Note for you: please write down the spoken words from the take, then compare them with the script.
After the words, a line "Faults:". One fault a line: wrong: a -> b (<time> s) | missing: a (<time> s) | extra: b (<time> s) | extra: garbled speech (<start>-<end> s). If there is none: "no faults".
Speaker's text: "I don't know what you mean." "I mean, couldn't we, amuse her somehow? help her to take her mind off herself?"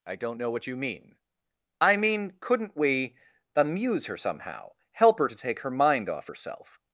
"I don't know what you mean." "I mean, couldn't we, amuse her somehow? help her to take her mind off herself?"
Faults:
no faults